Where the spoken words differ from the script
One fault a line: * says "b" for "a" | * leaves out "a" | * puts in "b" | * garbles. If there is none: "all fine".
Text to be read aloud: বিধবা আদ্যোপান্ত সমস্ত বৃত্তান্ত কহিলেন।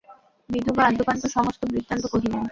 all fine